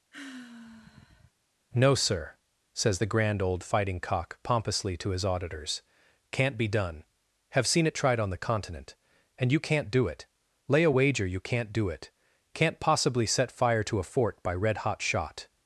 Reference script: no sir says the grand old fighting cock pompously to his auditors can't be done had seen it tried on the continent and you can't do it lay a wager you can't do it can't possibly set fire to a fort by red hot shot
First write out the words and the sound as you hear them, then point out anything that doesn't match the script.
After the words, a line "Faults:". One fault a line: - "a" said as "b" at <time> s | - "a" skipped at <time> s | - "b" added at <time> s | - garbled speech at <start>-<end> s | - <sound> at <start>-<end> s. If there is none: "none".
no sir says the grand old fighting cock pompously to his auditors can't be done have seen it tried on the continent and you can't do it lay a wager you can't do it can't possibly set fire to a fort by red hot shot
Faults:
- sigh at 0.1-1.3 s
- "had" said as "have" at 7.5 s